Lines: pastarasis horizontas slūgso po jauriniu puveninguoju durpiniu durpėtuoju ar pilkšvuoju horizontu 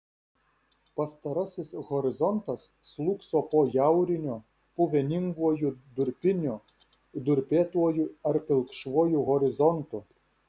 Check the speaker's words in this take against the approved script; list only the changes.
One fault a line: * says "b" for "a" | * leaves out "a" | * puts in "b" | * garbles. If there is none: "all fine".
all fine